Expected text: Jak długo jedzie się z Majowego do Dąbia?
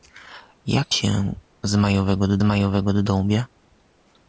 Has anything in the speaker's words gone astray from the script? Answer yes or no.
yes